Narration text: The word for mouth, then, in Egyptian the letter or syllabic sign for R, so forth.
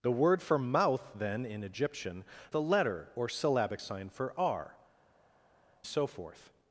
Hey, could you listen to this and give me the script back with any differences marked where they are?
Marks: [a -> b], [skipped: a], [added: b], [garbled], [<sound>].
The word for mouth, then, in Egyptian the letter or syllabic sign for R, so forth.